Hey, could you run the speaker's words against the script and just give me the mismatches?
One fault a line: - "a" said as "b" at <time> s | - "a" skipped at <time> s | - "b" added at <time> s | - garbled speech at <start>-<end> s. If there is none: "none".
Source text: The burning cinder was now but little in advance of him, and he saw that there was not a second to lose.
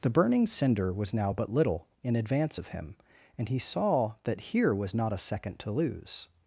- "there" said as "here" at 4.5 s